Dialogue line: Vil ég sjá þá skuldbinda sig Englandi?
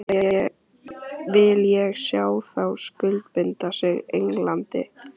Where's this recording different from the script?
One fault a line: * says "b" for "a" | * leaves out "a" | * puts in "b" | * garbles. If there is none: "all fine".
all fine